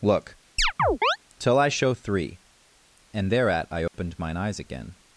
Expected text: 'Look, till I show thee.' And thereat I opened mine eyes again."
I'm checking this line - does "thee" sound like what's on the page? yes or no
no